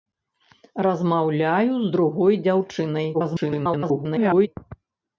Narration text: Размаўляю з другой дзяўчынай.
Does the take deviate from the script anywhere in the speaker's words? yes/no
yes